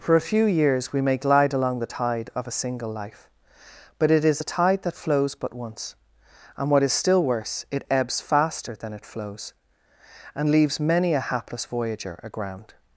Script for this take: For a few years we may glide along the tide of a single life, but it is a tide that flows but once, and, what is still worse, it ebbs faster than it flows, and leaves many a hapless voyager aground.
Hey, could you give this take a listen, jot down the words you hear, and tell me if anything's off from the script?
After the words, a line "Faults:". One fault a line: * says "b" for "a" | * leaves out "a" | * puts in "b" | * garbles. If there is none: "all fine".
For a few years we may glide along the tide of a single life, but it is a tide that flows but once, and, what is still worse, it ebbs faster than it flows, and leaves many a hapless voyager aground.
Faults:
all fine